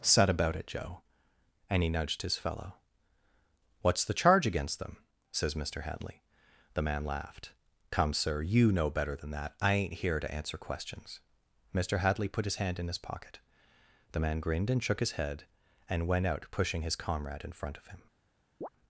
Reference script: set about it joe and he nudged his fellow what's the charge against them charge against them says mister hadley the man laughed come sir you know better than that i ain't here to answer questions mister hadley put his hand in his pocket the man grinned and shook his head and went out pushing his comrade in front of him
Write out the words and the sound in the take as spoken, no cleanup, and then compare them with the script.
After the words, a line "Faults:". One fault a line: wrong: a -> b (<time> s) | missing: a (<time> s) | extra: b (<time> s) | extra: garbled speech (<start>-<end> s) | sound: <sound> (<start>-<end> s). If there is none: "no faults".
set about it joe and he nudged his fellow what's the charge against them says mister hadley the man laughed come sir you know better than that i ain't here to answer questions mister hadley put his hand in his pocket the man grinned and shook his head and went out pushing his comrade in front of him
Faults:
missing: charge against them (5.0 s)
sound: chirp (18.6-18.7 s)